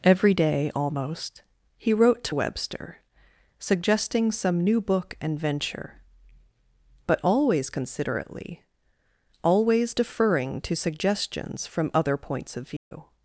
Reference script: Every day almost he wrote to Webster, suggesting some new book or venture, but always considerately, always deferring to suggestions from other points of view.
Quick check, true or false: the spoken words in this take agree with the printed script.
false